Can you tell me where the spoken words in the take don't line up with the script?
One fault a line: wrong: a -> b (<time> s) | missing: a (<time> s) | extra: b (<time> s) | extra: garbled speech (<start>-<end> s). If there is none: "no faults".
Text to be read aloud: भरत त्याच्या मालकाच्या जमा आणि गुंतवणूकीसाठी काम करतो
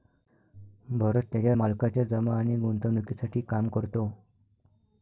no faults